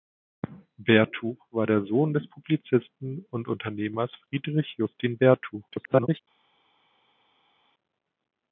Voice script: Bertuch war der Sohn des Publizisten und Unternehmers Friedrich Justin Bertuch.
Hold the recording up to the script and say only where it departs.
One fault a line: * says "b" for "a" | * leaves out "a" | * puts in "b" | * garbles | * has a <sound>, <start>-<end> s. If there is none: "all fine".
* garbles